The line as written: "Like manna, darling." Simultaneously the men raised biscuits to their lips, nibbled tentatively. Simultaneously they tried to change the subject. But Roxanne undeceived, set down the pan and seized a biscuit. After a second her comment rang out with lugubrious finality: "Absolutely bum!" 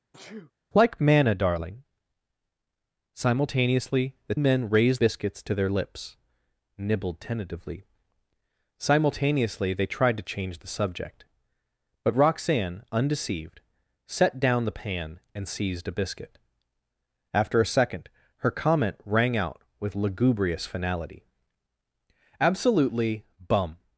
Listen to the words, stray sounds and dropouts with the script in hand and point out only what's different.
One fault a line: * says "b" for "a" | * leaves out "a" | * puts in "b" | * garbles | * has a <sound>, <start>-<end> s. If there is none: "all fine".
* has a sneeze, 0.1-0.5 s